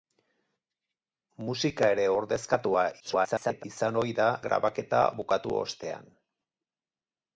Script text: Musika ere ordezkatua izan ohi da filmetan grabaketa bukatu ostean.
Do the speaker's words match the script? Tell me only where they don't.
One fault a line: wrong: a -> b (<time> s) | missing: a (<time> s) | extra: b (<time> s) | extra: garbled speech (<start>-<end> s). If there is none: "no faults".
extra: garbled speech (3.0-3.6 s)
missing: filmetan (4.3 s)